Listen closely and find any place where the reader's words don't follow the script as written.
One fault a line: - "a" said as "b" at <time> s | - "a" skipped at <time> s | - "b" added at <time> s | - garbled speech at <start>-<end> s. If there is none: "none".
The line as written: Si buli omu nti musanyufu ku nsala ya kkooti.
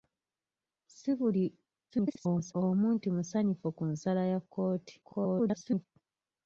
- garbled speech at 1.9-2.5 s
- garbled speech at 5.0-5.9 s